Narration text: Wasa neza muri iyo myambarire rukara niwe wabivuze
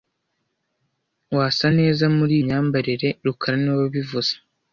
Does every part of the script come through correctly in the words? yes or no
no